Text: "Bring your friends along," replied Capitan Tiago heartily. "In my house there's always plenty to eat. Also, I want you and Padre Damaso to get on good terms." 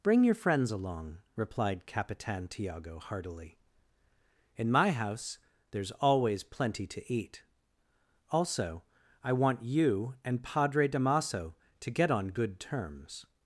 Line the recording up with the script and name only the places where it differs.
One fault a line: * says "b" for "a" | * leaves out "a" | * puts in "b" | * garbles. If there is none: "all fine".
all fine